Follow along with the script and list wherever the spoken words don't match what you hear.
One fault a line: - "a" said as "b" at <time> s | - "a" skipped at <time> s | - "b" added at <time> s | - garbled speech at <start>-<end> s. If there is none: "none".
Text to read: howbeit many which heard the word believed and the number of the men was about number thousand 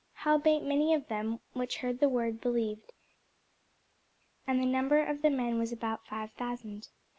- "of them" added at 0.9 s
- "number" said as "five" at 6.1 s